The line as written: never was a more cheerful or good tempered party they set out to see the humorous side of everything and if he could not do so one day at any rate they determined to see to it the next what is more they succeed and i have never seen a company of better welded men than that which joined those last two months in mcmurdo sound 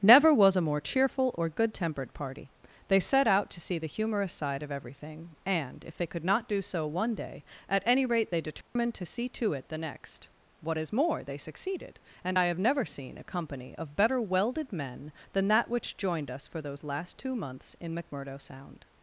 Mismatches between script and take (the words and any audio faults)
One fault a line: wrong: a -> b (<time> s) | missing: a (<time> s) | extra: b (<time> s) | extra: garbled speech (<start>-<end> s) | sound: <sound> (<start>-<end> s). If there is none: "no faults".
wrong: he -> they (6.0 s)
sound: dropout (8.6-8.8 s)
wrong: succeed -> succeeded (11.4 s)
extra: us for (16.3 s)